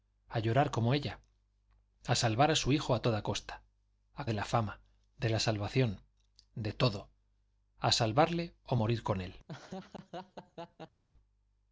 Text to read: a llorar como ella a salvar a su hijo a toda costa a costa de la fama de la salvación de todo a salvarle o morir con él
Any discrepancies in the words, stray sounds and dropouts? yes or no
yes